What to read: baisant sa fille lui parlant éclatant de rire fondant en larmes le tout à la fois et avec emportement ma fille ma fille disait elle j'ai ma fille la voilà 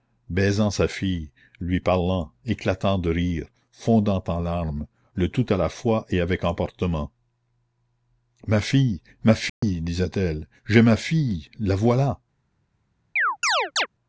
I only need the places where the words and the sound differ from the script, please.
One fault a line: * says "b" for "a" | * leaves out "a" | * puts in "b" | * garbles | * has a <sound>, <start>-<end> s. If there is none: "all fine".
* has a dropout, 9.5-9.6 s
* has a chirp, 13.2-13.9 s